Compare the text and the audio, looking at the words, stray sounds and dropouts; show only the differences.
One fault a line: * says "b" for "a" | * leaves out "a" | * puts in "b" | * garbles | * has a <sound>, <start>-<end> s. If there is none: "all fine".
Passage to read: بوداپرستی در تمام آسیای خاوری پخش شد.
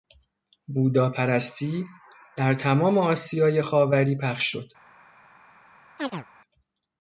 * has a chirp, 6.0-6.3 s